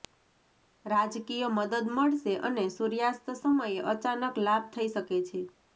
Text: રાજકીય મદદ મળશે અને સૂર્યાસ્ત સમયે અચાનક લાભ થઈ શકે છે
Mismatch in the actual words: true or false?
false